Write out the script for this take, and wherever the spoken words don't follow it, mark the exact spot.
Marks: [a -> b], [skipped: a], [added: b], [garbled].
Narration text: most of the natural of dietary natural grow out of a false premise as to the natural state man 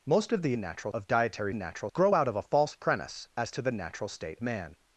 most of the natural of dietary natural grow out of a false premise as to the natural state man